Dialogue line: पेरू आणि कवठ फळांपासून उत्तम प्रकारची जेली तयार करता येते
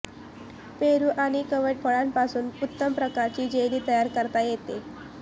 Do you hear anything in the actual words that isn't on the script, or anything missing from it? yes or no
no